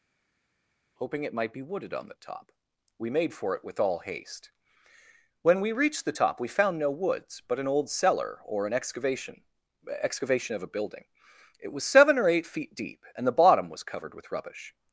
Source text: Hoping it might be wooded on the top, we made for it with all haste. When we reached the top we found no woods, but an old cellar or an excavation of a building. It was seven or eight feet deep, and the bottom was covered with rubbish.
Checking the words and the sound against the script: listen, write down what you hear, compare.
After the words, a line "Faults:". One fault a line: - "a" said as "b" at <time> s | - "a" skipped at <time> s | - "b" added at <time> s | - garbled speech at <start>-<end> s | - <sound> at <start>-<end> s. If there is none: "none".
Hoping it might be wooded on the top, we made for it with all haste. When we reached the top we found no woods, but an old cellar or an excavation excavation of a building. It was seven or eight feet deep, and the bottom was covered with rubbish.
Faults:
- "excavation" added at 10.0 s